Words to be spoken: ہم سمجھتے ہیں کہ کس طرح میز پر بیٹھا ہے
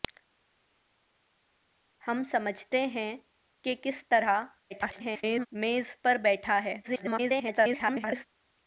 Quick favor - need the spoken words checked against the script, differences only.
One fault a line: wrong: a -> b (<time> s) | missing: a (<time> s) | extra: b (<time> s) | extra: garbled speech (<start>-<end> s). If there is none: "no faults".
extra: garbled speech (4.7-5.5 s)
extra: garbled speech (6.8-8.2 s)